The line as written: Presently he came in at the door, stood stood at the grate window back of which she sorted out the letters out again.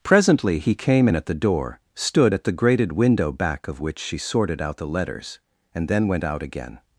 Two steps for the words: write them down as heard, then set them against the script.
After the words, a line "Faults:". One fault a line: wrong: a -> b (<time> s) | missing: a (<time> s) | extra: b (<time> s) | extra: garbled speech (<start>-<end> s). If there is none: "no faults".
Presently he came in at the door, stood at the grated window back of which she sorted out the letters and then went out again.
Faults:
missing: stood (2.3 s)
wrong: grate -> grated (2.5 s)
extra: and then went (5.7 s)